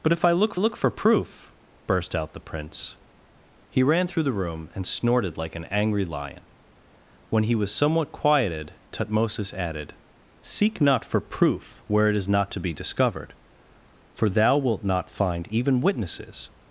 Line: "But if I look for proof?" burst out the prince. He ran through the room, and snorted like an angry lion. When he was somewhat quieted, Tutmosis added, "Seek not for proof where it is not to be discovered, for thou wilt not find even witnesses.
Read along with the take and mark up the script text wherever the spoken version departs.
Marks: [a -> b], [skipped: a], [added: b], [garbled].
"But if I look [added: look] for proof?" burst out the prince. He ran through the room, and snorted like an angry lion. When he was somewhat quieted, Tutmosis added, "Seek not for proof where it is not to be discovered, for thou wilt not find even witnesses.